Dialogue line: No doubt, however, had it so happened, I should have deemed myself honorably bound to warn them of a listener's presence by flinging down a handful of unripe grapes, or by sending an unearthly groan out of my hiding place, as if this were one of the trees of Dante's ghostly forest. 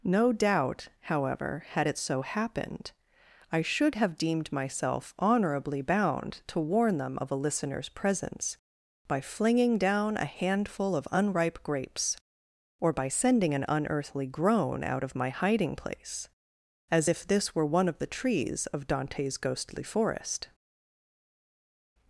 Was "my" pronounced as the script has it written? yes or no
yes